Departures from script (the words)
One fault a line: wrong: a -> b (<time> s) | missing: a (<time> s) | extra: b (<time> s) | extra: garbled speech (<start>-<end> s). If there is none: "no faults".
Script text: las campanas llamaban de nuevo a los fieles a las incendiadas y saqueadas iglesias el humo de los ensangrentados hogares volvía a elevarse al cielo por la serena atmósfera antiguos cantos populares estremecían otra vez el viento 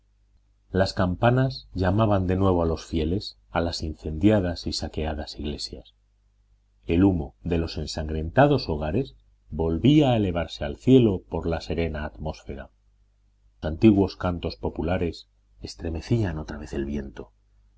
no faults